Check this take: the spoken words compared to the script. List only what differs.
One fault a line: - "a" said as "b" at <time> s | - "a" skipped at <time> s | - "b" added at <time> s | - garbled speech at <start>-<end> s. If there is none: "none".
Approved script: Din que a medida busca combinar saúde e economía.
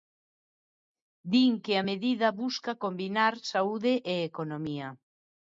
none